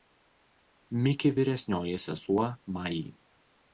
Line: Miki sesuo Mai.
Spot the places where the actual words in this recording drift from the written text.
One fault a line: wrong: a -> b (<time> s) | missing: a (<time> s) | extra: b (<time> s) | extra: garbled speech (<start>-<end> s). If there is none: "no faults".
extra: vyresnioji (1.4 s)